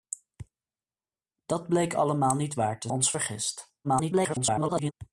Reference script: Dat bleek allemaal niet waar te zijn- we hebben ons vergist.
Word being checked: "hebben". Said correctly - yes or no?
no